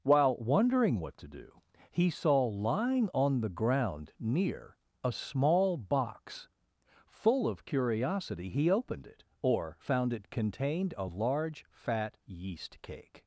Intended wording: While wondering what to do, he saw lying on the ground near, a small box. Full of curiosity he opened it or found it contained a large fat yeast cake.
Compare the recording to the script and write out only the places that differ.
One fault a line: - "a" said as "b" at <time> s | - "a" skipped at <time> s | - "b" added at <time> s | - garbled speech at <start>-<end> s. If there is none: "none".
none